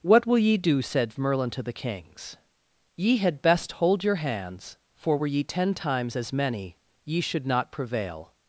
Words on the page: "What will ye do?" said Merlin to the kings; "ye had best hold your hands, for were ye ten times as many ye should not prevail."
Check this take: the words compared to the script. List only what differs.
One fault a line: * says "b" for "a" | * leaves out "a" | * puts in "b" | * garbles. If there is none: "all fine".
all fine